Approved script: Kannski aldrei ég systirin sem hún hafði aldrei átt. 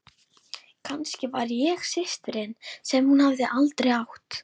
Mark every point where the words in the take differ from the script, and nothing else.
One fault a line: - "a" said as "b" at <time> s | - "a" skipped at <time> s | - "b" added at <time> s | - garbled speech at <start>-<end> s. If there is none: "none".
- "aldrei" said as "var" at 1.4 s